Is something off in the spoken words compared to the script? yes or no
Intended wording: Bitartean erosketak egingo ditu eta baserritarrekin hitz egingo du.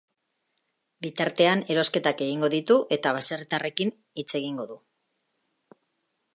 no